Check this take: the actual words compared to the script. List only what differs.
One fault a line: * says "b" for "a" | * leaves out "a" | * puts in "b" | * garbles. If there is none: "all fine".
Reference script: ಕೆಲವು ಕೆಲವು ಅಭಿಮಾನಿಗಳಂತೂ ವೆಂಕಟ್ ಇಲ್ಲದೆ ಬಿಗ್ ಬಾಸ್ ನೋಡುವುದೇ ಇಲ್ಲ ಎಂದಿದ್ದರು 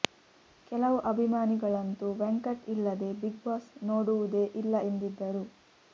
* leaves out "ಕೆಲವು"